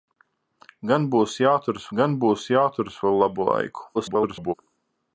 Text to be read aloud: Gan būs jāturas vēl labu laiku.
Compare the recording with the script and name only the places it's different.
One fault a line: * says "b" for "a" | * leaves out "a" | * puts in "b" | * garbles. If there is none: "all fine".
* puts in "gan būs jāturas"
* garbles